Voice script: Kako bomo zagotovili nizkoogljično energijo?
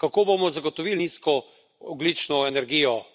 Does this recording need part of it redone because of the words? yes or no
no